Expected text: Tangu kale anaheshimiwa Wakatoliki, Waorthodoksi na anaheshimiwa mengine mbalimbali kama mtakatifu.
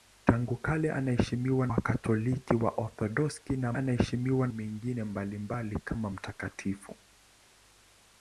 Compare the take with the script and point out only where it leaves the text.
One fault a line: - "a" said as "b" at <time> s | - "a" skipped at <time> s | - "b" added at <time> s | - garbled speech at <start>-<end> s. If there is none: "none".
none